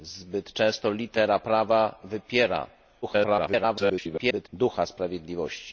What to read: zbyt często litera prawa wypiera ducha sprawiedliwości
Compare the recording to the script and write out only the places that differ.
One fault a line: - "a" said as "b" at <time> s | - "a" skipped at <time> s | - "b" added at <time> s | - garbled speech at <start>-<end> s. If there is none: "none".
- garbled speech at 3.0-4.5 s